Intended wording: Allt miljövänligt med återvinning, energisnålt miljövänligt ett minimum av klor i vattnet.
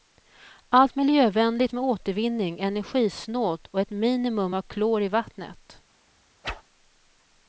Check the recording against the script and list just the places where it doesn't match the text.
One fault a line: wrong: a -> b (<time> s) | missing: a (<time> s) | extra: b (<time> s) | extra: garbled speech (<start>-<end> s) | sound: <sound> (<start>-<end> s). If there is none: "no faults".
wrong: miljövänligt -> och (3.7 s)
sound: whoosh (6.4-6.6 s)